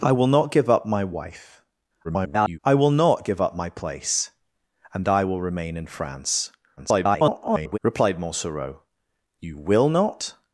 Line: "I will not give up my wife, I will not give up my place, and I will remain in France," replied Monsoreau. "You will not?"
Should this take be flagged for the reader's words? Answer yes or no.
yes